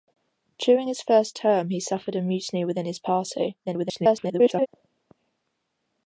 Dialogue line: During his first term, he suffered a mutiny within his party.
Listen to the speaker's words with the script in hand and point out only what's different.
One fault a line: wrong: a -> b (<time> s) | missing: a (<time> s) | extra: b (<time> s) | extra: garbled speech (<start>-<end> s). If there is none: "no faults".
extra: garbled speech (3.6-4.7 s)